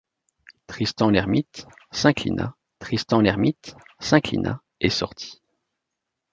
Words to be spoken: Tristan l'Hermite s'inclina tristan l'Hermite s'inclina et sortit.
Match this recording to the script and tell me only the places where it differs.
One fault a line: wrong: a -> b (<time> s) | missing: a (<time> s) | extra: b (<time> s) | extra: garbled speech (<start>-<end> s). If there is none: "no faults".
no faults